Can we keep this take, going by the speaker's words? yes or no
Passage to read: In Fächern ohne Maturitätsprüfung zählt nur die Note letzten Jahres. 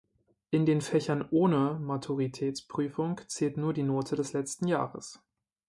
no